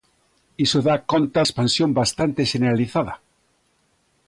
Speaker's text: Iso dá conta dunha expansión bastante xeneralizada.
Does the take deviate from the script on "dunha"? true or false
true